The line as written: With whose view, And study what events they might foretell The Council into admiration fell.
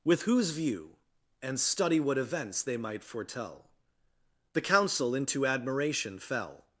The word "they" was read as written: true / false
true